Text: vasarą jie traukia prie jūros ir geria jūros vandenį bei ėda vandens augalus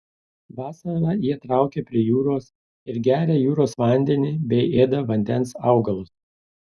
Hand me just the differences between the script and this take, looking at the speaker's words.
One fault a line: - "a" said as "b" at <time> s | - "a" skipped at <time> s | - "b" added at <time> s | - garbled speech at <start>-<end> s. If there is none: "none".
none